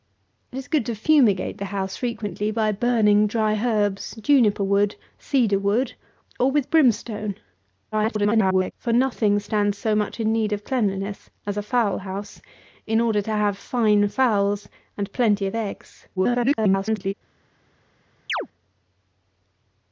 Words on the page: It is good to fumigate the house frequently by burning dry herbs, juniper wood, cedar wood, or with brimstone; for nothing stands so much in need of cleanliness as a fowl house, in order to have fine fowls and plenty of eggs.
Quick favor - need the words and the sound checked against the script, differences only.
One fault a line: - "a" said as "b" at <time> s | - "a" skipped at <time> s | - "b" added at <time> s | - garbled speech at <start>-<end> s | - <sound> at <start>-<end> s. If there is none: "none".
- garbled speech at 7.9-8.7 s
- garbled speech at 16.2-17.1 s
- chirp at 18.3-18.5 s